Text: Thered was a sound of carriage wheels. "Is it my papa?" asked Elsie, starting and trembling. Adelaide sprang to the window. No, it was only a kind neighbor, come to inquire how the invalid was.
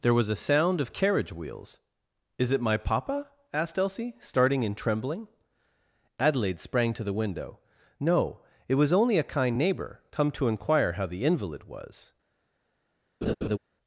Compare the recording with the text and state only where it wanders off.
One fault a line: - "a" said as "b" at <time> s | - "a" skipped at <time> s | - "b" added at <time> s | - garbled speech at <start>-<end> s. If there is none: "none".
- "Thered" said as "There" at 0.0 s